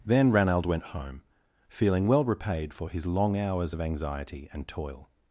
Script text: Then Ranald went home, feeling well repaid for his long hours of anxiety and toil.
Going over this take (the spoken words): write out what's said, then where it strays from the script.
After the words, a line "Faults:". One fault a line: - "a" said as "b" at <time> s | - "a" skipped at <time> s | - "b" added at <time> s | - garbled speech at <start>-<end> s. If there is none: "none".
Then Ranald went home, feeling well repaid for his long hours of anxiety and toil.
Faults:
none